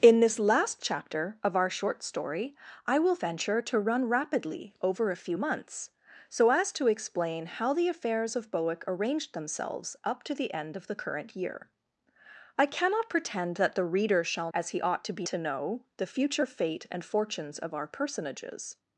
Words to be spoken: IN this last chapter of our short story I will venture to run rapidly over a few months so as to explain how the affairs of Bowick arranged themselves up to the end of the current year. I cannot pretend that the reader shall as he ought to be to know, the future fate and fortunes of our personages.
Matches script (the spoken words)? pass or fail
pass